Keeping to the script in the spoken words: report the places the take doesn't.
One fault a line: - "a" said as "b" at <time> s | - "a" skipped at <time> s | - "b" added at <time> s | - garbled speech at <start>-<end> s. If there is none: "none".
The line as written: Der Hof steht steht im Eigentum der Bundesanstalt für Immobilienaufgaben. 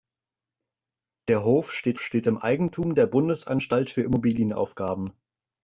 none